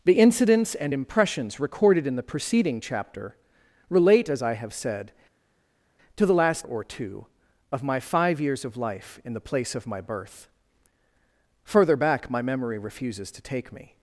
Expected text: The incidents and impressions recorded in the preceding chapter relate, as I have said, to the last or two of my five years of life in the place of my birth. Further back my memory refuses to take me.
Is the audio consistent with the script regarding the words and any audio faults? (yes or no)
yes